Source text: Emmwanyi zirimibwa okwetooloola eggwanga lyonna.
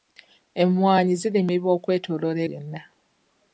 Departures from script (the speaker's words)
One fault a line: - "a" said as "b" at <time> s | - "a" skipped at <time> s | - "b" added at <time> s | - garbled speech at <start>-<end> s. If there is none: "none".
- "eggwanga" skipped at 2.4 s